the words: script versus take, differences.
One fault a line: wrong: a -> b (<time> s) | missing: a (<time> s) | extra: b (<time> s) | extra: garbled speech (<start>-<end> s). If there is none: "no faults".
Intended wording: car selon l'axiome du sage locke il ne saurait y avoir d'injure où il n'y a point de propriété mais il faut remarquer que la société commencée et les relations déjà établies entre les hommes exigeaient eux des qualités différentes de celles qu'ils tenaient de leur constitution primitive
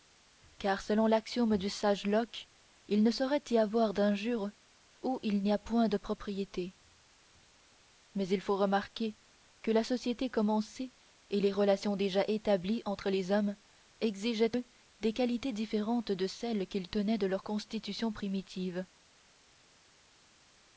no faults